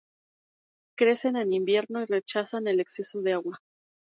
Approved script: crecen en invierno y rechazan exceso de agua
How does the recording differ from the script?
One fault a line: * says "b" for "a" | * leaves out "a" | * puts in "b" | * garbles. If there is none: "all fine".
* puts in "el"